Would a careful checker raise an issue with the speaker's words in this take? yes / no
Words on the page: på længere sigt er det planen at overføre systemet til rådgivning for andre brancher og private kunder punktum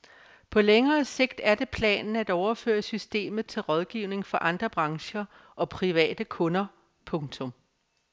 no